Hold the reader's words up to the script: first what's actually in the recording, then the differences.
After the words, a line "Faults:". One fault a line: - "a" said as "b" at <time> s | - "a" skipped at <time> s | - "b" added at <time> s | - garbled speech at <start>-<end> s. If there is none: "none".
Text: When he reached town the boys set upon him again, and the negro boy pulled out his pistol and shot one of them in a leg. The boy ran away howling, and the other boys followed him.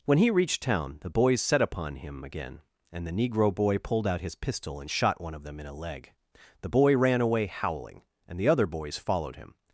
When he reached town the boys set upon him again, and the negro boy pulled out his pistol and shot one of them in a leg. The boy ran away howling, and the other boys followed him.
Faults:
none